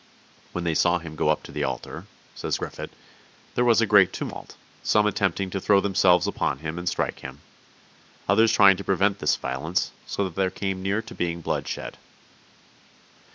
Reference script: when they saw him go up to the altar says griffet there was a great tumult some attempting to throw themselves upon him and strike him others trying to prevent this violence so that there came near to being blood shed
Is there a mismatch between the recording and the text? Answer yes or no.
no